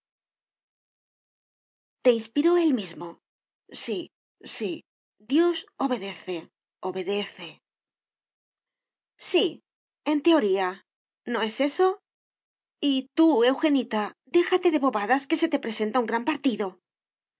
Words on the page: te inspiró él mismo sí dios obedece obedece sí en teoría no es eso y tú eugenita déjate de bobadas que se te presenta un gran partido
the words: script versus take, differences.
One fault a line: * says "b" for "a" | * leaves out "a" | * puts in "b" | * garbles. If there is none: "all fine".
* puts in "sí"